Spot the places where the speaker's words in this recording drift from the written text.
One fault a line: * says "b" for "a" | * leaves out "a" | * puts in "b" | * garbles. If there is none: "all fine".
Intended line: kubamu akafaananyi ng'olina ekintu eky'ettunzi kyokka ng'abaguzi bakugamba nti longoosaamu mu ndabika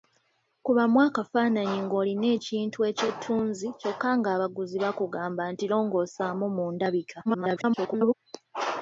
* garbles